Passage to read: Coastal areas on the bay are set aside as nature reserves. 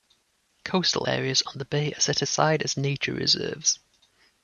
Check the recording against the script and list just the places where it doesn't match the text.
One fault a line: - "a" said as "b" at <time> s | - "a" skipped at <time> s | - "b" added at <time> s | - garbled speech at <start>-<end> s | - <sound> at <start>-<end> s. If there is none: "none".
none